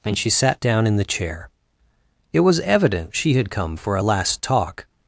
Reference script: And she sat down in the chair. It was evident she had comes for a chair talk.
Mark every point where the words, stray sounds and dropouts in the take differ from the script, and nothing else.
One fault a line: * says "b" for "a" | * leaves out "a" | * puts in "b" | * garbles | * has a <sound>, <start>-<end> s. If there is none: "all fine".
* says "come" for "comes"
* says "last" for "chair"